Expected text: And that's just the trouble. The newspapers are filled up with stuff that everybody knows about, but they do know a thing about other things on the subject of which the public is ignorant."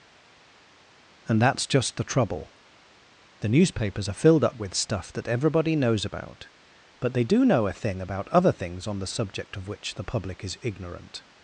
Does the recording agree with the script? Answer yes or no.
yes